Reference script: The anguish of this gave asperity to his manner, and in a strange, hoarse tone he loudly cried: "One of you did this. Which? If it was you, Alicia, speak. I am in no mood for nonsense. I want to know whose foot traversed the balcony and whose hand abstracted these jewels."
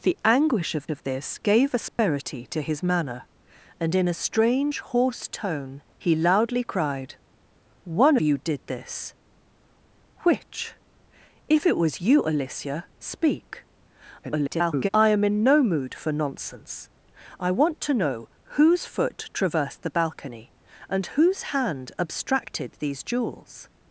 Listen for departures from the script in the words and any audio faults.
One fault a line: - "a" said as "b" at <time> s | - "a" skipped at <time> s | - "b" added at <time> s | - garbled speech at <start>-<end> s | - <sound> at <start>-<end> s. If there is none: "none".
- "of" added at 0.9 s
- dropout at 1.9-2.0 s
- "of" skipped at 8.2 s
- garbled speech at 14.2-14.9 s